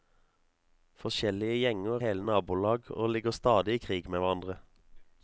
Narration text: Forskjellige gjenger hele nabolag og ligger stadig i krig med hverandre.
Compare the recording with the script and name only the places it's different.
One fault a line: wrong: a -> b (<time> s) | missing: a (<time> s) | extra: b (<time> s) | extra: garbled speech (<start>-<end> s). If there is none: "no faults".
no faults